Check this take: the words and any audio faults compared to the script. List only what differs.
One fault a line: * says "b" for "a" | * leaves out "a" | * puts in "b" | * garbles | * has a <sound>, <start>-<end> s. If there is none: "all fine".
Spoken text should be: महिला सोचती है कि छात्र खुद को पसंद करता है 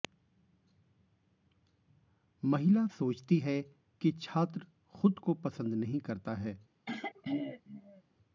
* puts in "नहीं"
* has a throat clearing, 6.9-8.0 s